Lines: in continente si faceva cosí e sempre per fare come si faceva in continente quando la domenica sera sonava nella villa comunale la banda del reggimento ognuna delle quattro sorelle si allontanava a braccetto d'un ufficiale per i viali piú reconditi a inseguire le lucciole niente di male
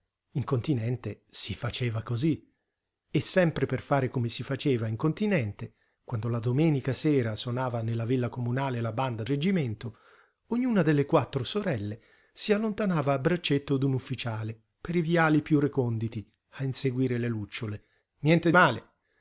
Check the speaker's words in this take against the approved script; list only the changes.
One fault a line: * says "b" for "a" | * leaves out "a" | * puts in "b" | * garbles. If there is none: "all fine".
* leaves out "del"
* leaves out "di"